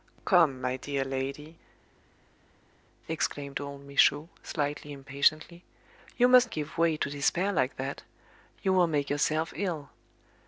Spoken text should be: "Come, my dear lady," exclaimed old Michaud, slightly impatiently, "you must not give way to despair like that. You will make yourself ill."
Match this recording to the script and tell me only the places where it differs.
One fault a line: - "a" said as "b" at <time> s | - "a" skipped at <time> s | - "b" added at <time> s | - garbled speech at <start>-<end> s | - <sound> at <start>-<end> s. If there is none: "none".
- "not" skipped at 6.5 s